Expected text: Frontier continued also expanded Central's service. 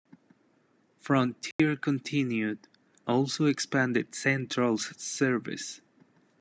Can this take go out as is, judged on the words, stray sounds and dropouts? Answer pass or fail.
fail